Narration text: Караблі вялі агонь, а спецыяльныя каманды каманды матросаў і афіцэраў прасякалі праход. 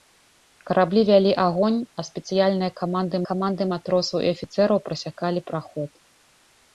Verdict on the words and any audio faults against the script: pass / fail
pass